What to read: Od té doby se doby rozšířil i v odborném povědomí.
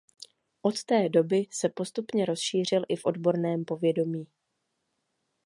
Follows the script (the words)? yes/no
no